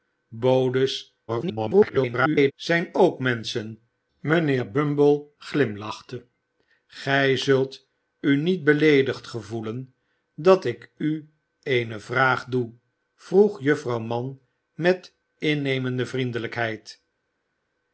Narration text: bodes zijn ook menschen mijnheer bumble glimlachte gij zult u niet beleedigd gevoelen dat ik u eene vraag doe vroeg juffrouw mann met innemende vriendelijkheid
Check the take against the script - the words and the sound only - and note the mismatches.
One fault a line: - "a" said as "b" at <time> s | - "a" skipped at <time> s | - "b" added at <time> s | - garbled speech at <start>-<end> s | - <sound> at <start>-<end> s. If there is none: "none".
- garbled speech at 1.3-2.5 s